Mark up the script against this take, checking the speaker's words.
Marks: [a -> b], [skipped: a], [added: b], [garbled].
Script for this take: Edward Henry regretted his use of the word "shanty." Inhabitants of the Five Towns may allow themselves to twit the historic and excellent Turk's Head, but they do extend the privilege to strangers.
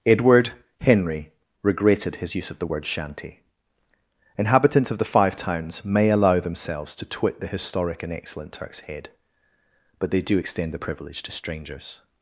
Edward Henry regretted his use of the word "shanty." Inhabitants of the Five Towns may allow themselves to twit the historic and excellent Turk's Head, but they do extend the privilege to strangers.